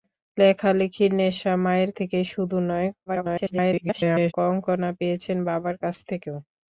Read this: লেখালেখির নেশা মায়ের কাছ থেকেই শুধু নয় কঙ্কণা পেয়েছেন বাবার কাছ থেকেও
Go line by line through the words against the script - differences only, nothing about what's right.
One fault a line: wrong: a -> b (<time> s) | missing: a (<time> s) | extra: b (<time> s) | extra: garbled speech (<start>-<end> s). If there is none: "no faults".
missing: কাছ (1.9 s)
extra: garbled speech (3.1-4.3 s)